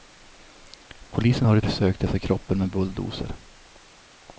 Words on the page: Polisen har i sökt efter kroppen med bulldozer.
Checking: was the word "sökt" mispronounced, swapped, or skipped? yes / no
no